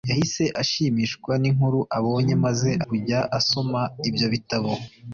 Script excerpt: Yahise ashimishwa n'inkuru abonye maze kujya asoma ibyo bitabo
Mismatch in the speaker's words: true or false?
false